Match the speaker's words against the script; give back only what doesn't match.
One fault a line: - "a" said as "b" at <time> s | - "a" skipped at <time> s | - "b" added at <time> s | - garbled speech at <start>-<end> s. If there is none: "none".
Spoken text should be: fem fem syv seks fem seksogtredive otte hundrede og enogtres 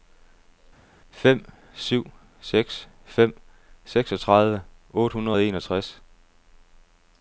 - "fem" skipped at 1.4 s